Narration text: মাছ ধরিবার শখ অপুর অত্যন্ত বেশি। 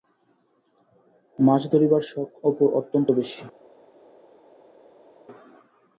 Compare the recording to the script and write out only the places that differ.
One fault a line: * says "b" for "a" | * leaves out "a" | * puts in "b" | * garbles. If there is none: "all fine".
all fine